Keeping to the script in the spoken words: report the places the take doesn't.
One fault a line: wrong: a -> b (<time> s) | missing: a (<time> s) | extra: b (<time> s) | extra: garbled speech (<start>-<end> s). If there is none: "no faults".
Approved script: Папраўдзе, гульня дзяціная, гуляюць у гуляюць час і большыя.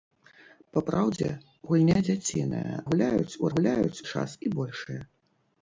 no faults